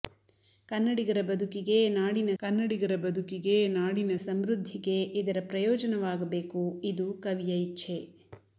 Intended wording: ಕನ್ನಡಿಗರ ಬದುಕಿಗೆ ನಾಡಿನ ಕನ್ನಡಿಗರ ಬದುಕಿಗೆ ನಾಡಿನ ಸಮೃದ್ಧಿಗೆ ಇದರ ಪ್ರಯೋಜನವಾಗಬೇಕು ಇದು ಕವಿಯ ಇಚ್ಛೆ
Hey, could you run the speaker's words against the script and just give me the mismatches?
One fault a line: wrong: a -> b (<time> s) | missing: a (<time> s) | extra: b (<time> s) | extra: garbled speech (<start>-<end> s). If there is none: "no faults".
no faults